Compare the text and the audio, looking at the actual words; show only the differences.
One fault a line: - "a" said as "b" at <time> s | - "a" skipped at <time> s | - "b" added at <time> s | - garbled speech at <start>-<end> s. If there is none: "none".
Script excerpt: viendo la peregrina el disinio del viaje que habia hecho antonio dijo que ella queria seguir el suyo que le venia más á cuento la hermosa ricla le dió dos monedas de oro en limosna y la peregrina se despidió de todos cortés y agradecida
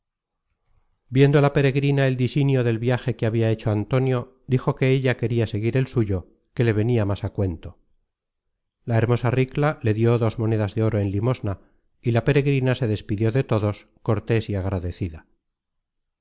none